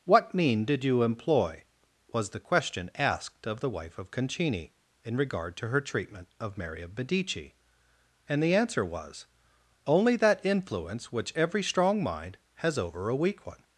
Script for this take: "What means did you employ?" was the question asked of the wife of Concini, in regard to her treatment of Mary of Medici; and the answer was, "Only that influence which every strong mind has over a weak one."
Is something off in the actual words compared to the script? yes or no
yes